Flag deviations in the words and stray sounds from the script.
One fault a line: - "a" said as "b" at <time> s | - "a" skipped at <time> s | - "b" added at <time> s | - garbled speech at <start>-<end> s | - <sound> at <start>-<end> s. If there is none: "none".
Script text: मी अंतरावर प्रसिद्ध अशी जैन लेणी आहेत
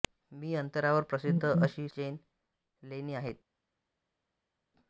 none